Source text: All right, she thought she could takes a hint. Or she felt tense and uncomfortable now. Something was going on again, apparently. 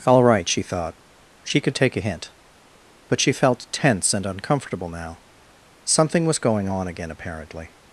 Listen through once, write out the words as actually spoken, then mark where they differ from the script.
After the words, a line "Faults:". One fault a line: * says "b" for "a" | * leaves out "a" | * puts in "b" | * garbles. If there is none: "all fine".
All right, she thought she could take a hint. But she felt tense and uncomfortable now. Something was going on again, apparently.
Faults:
* says "take" for "takes"
* says "But" for "Or"